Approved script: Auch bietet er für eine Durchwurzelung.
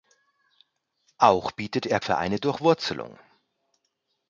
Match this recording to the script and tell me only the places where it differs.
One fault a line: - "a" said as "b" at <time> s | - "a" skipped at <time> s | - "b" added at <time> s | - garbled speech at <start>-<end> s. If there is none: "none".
none